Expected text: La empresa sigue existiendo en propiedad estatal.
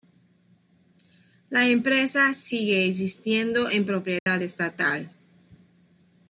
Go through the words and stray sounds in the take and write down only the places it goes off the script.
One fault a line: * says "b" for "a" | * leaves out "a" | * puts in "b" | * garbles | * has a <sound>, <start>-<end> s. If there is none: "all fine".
* has a dropout, 4.2-4.3 s